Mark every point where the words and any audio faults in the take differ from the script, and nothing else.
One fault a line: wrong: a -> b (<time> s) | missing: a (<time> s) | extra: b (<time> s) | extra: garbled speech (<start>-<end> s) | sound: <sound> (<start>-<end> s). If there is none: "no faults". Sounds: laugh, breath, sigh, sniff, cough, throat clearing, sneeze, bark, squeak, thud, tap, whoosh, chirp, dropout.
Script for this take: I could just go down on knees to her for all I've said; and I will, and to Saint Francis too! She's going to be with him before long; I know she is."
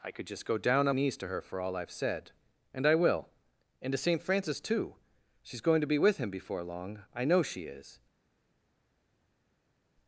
no faults